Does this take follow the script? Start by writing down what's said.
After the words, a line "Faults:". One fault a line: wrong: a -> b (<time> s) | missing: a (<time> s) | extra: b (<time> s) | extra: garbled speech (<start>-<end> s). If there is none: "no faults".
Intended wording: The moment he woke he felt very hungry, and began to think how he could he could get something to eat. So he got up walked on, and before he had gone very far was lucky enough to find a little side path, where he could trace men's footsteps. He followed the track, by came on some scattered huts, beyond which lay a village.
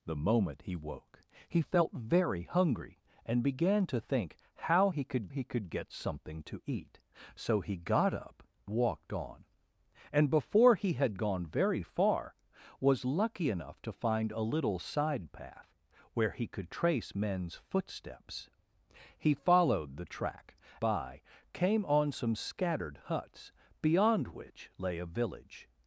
The moment he woke he felt very hungry, and began to think how he could he could get something to eat. So he got up walked on, and before he had gone very far was lucky enough to find a little side path, where he could trace men's footsteps. He followed the track, by came on some scattered huts, beyond which lay a village.
Faults:
no faults